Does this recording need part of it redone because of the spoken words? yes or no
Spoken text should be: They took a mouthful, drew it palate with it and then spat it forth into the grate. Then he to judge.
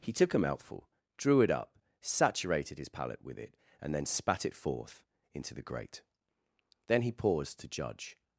yes